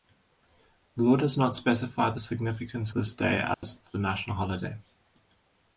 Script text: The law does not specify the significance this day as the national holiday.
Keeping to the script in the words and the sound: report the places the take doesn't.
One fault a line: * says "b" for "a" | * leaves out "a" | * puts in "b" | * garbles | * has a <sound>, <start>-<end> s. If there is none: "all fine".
* has a dropout, 3.5-3.6 s